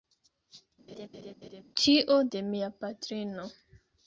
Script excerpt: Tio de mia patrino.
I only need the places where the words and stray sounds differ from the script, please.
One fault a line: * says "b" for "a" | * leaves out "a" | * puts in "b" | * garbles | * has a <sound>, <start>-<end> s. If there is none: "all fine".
* has a laugh, 0.9-1.6 s